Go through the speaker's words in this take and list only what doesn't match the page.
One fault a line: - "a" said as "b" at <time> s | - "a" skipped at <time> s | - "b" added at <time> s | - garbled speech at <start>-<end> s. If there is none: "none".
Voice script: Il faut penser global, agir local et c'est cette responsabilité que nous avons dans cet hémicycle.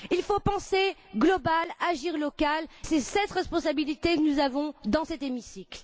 - "et" skipped at 2.6 s